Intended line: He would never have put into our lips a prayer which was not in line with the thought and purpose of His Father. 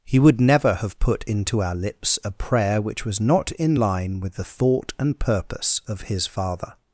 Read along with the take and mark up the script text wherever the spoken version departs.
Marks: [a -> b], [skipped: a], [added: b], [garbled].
He would never have put into our lips a prayer which was not in line with the thought and purpose of His Father.